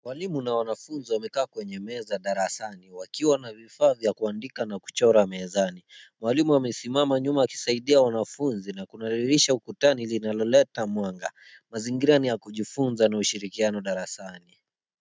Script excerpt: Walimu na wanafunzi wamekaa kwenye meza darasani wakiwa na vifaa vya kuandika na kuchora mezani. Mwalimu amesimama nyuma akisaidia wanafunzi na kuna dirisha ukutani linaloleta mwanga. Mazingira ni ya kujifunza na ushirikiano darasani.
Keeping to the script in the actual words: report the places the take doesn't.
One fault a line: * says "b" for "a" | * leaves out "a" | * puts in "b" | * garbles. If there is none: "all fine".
all fine